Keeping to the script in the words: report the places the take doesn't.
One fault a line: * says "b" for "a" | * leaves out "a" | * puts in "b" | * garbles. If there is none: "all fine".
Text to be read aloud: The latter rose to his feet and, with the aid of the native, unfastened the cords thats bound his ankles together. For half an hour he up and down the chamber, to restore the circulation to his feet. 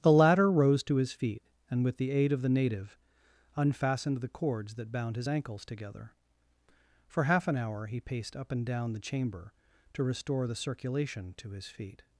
* says "that" for "thats"
* puts in "paced"